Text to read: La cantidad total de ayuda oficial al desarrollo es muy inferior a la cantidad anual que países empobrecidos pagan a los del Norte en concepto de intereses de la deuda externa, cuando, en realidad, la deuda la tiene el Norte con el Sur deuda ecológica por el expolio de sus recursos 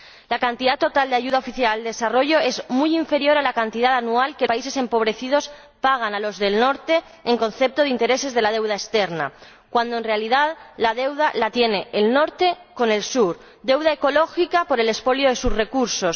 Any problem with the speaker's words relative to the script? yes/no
no